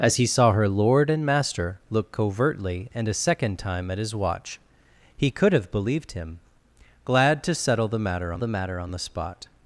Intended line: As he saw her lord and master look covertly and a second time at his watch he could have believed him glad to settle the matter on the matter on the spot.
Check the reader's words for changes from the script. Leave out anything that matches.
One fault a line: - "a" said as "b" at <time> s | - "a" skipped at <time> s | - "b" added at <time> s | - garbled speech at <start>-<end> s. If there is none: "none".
none